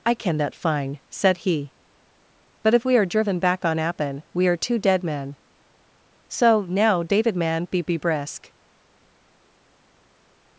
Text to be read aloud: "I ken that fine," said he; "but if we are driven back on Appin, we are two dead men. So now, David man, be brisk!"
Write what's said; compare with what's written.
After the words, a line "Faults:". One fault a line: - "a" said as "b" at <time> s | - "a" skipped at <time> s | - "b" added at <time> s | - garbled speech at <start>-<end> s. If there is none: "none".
"I ken that fine," said he; "but if we are driven back on Appin, we are two dead men. So now, David man, be be brisk!"
Faults:
- "be" added at 7.8 s